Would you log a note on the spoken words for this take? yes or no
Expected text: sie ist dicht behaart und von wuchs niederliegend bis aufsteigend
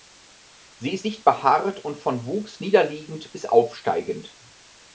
no